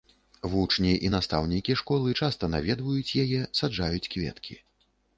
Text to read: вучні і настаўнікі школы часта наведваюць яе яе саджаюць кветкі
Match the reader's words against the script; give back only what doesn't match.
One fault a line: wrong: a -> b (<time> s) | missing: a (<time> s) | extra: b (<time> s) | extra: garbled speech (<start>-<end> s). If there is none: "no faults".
missing: яе (3.4 s)